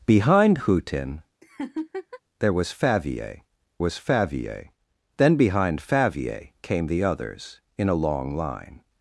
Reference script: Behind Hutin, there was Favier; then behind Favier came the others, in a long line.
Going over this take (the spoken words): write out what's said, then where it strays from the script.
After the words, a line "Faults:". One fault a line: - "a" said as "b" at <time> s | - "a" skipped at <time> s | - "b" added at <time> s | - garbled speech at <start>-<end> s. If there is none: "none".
Behind Hutin, there was Favier was Favier; then behind Favier came the others, in a long line.
Faults:
- "was Favier" added at 3.8 s